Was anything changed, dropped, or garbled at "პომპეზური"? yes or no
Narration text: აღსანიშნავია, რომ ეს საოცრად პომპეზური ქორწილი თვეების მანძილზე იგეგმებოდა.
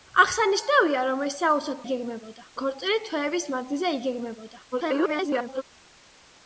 yes